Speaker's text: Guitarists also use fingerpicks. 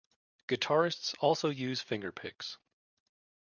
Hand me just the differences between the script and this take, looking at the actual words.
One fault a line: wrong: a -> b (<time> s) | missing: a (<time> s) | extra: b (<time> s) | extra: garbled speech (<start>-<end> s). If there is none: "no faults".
no faults